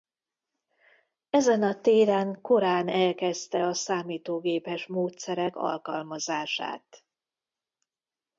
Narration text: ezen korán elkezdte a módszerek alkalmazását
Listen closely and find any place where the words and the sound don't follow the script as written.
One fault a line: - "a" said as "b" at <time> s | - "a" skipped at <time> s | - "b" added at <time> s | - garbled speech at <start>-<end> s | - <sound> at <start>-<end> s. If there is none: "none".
- "a téren" added at 1.6 s
- "számítógépes" added at 3.7 s